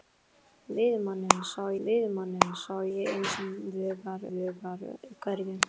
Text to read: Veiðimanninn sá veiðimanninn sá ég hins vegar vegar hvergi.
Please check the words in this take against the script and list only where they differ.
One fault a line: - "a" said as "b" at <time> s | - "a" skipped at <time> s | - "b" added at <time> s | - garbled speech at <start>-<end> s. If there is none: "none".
none